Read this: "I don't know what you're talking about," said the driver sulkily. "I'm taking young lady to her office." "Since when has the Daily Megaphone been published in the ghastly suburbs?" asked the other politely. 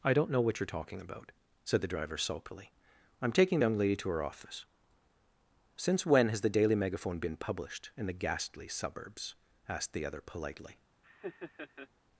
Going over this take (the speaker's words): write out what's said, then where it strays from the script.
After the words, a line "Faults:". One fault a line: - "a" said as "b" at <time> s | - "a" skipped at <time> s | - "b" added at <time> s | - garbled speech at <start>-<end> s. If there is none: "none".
"I don't know what you're talking about," said the driver sulkily. "I'm taking young lady to her office." "Since when has the Daily Megaphone been published in the ghastly suburbs?" asked the other politely.
Faults:
none